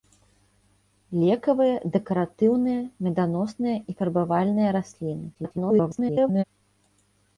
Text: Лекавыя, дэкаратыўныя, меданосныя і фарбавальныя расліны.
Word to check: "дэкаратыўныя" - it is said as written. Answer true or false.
true